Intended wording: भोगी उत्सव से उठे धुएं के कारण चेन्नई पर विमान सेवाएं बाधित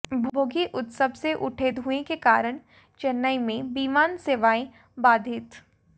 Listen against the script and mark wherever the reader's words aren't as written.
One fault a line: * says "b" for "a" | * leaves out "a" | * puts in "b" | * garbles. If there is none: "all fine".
* says "में" for "पर"